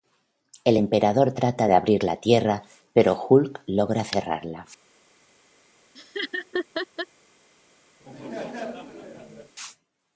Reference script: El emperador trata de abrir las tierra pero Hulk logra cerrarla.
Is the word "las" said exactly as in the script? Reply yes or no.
no